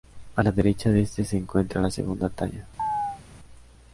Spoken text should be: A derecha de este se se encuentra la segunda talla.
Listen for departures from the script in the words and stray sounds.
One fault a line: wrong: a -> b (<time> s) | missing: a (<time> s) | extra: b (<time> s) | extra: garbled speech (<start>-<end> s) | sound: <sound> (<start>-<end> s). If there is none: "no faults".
extra: la (0.4 s)
missing: se (1.4 s)
sound: chirp (2.8-3.2 s)